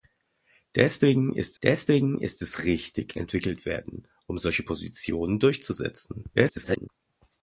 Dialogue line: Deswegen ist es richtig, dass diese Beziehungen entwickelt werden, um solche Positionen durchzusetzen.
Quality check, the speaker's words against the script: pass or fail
fail